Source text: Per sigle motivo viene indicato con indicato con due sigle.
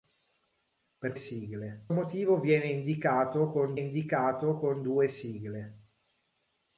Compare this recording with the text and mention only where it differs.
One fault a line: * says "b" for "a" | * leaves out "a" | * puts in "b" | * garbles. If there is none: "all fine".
all fine